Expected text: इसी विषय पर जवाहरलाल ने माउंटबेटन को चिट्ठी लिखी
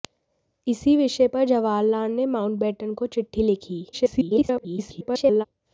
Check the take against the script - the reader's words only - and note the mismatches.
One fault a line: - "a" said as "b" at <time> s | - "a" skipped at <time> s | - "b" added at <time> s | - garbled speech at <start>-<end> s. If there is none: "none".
- garbled speech at 3.9-5.4 s